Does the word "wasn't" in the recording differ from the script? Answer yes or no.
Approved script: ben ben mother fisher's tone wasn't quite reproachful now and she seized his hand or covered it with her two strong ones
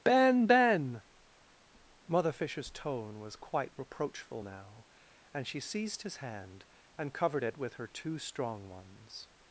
yes